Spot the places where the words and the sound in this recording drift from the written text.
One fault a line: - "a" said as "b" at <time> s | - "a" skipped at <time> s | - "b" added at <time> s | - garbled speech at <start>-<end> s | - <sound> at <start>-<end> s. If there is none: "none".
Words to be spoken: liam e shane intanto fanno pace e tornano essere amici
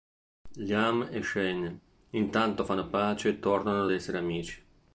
none